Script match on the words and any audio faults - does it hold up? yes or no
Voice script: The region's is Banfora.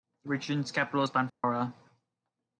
no